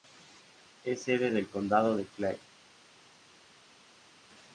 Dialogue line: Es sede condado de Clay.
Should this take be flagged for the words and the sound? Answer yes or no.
yes